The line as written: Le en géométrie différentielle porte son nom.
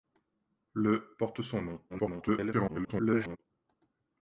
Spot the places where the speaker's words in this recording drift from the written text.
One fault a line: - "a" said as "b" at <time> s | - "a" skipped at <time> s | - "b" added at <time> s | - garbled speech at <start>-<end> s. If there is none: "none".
- "en géométrie différentielle" skipped at 1.1 s
- garbled speech at 1.9-3.4 s